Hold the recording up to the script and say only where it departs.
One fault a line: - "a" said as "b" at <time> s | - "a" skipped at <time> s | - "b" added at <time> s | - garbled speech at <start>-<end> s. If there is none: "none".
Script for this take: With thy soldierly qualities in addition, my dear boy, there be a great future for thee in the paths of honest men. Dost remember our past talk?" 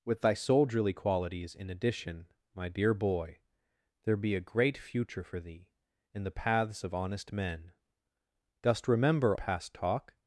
- "our" skipped at 9.4 s